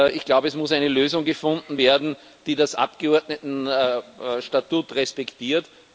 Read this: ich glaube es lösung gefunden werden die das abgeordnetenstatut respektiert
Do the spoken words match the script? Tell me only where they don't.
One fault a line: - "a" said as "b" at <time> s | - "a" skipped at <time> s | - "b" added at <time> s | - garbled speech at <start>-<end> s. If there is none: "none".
- "muss eine" added at 0.6 s